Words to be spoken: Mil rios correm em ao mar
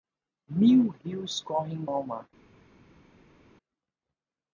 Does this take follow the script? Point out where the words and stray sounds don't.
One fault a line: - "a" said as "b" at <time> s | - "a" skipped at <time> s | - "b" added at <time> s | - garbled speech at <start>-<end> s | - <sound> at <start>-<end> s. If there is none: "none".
none